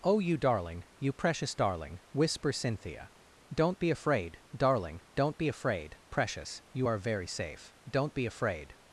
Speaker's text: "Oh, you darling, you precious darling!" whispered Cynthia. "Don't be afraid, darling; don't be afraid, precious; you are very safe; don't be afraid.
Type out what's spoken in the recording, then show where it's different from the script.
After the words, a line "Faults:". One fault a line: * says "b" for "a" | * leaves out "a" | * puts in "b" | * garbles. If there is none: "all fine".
"Oh, you darling, you precious darling!" whisper Cynthia. "Don't be afraid, darling; don't be afraid, precious; you are very safe; don't be afraid.
Faults:
* says "whisper" for "whispered"